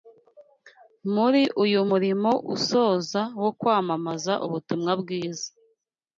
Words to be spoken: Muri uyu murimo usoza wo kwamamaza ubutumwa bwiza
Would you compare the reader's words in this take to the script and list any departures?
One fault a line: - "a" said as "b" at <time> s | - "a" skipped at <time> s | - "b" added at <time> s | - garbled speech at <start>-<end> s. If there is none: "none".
none